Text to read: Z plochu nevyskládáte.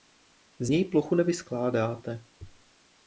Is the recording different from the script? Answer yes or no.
yes